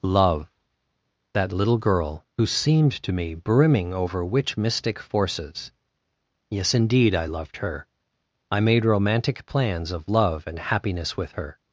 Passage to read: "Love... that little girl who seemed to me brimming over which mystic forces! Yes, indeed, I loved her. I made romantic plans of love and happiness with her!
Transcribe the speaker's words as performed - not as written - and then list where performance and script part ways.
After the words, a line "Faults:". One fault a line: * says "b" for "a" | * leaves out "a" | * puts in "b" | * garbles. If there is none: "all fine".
"Love... that little girl who seemed to me brimming over which mystic forces! Yes, indeed, I loved her. I made romantic plans of love and happiness with her!
Faults:
all fine